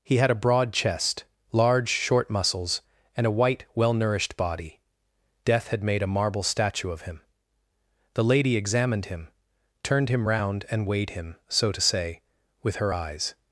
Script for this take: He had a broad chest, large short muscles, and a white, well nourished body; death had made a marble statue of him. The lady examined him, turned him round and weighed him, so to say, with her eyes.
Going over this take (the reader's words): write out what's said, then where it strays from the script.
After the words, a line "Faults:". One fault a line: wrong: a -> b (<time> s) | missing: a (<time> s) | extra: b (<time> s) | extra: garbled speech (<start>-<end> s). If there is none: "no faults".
He had a broad chest, large short muscles, and a white, well nourished body; death had made a marble statue of him. The lady examined him, turned him round and weighed him, so to say, with her eyes.
Faults:
no faults